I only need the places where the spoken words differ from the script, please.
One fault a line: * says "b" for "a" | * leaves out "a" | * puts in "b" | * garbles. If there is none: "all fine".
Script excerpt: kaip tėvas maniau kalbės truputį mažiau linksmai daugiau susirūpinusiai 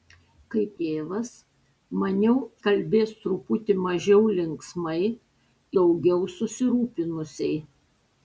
all fine